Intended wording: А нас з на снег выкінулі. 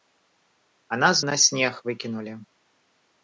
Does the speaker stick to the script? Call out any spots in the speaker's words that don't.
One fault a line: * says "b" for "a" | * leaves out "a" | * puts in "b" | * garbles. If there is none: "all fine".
all fine